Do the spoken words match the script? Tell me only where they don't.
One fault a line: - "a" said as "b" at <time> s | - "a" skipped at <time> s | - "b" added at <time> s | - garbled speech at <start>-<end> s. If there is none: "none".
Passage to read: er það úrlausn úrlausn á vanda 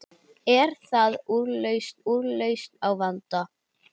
none